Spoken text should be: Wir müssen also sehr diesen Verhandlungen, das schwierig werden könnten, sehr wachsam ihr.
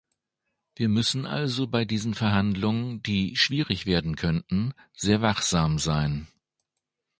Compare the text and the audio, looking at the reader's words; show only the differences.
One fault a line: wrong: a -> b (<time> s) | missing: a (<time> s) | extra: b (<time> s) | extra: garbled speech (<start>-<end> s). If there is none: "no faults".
wrong: sehr -> bei (1.7 s)
wrong: das -> die (3.0 s)
wrong: ihr -> sein (5.8 s)